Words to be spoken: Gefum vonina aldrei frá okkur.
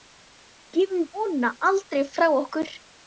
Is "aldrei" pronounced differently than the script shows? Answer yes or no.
no